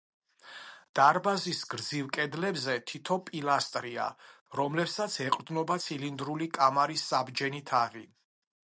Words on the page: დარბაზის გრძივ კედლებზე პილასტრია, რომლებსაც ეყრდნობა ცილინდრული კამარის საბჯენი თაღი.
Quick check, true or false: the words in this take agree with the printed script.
false